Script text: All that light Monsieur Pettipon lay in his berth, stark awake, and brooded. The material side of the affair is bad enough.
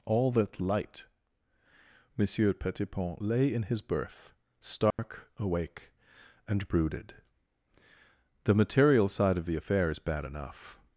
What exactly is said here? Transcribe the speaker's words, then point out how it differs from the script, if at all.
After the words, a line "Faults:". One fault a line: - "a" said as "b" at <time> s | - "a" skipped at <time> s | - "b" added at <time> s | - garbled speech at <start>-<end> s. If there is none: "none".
All that light Monsieur Pettipon lay in his berth, stark awake, and brooded. The material side of the affair is bad enough.
Faults:
none